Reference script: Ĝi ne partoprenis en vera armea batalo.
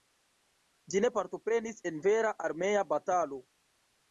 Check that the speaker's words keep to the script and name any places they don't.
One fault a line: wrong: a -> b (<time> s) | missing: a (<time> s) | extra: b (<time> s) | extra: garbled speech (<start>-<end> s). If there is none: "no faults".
no faults